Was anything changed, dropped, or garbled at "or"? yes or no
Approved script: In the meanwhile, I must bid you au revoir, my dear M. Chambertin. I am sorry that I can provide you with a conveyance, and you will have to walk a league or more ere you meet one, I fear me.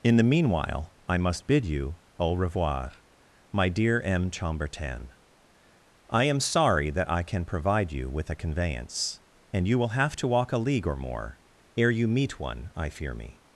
no